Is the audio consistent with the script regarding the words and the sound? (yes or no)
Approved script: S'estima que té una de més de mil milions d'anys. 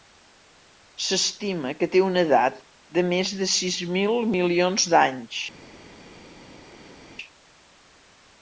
no